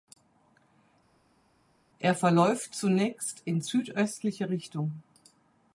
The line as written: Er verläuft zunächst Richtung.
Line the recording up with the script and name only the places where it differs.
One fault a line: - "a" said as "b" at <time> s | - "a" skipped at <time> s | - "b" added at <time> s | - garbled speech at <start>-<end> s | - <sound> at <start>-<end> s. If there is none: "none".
- "in südöstliche" added at 3.5 s